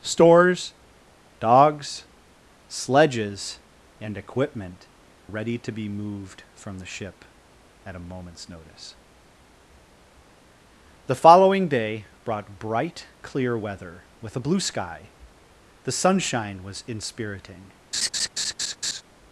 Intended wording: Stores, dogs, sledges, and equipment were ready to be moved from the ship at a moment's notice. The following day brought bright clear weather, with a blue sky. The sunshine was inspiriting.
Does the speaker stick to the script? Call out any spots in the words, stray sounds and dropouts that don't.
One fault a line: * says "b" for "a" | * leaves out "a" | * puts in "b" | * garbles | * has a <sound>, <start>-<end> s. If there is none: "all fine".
* leaves out "were"
* has a laugh, 17.9-19.0 s